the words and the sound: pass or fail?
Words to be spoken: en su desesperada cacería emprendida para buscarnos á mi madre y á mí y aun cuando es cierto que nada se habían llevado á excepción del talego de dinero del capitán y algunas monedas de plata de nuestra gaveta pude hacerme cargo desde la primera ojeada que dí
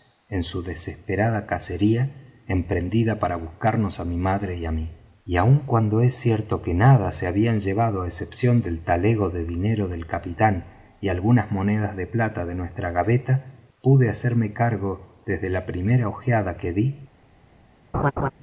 fail